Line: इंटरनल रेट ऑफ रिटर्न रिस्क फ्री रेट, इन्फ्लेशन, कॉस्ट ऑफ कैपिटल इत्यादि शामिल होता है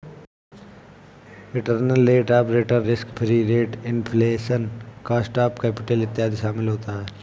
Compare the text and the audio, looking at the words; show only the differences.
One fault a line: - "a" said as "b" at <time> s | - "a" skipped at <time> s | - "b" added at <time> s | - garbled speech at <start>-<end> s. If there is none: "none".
none